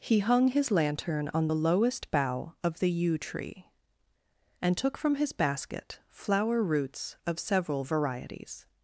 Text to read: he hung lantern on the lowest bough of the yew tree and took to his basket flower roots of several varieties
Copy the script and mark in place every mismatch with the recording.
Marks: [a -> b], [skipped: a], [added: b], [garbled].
he hung [added: his] lantern on the lowest bough of the yew tree and took [to -> from] his basket flower roots of several varieties